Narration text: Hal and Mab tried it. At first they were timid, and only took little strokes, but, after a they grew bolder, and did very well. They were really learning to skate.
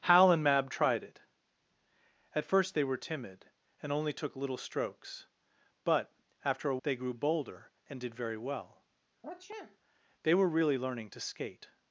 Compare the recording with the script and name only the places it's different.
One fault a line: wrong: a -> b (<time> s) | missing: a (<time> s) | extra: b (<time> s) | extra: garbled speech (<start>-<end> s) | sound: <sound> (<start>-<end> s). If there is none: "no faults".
sound: sniff (9.2-9.8 s)